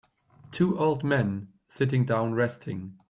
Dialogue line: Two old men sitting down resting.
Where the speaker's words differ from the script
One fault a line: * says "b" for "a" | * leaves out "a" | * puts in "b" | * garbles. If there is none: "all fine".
all fine